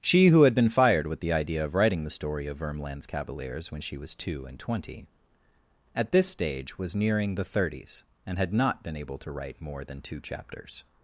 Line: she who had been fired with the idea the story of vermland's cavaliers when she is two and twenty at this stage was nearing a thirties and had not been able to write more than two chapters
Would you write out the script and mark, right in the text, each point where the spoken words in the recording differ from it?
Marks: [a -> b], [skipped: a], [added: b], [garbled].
she who had been fired with the idea [added: of writing] the story of vermland's cavaliers when she [is -> was] two and twenty at this stage was nearing [a -> the] thirties and had not been able to write more than two chapters